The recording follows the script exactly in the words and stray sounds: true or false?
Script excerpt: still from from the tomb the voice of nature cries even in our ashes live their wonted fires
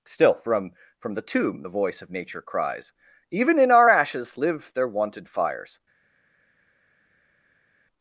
true